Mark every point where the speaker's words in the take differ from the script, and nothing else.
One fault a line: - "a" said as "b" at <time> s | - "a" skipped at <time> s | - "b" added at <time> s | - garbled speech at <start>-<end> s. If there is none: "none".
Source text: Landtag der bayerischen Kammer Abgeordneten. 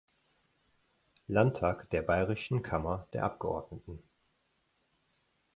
- "der" added at 3.1 s